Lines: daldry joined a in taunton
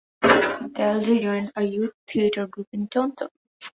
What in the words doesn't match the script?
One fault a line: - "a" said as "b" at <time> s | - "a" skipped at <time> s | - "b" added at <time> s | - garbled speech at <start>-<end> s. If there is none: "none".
- "youth theatre group" added at 1.6 s